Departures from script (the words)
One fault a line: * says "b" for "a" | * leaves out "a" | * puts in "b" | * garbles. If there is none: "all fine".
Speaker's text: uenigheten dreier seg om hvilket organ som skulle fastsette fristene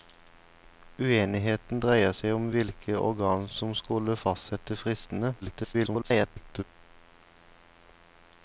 * garbles